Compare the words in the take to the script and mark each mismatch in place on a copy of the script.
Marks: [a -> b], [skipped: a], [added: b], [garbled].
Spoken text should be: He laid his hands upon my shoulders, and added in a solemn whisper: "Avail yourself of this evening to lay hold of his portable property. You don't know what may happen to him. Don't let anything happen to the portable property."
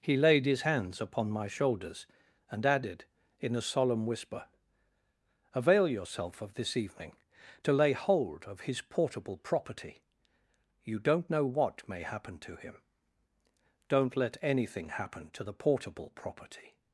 He laid his hands upon my shoulders, and added in a solemn whisper: "Avail yourself of this evening to lay hold of his portable property. You don't know what may happen to him. Don't let anything happen to the portable property."